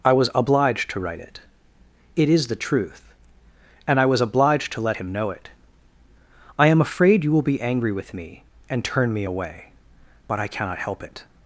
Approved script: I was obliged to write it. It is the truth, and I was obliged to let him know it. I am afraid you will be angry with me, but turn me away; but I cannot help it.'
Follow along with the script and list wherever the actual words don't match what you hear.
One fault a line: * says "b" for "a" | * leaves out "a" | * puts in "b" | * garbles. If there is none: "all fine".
* says "and" for "but"